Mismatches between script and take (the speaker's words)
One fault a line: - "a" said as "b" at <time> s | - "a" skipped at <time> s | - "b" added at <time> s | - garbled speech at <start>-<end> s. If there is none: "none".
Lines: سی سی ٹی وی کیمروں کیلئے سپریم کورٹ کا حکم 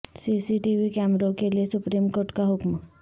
none